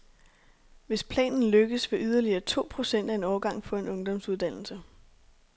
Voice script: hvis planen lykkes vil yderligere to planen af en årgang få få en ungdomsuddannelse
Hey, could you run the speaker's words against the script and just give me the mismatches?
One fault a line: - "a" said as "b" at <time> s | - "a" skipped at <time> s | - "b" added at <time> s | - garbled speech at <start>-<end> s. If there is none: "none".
- "planen" said as "procent" at 2.7 s
- "få" skipped at 3.8 s